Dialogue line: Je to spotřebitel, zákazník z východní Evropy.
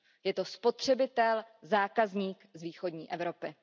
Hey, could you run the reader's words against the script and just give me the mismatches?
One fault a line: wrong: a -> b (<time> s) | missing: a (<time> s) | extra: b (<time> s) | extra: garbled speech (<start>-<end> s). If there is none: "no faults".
no faults